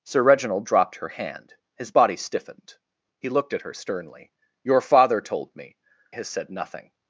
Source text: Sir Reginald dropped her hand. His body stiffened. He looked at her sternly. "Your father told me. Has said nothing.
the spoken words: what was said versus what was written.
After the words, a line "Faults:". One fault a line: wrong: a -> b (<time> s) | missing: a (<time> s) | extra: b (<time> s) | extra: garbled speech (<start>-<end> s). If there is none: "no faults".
Sir Reginald dropped her hand. His body stiffened. He looked at her sternly. "Your father told me. Has said nothing.
Faults:
no faults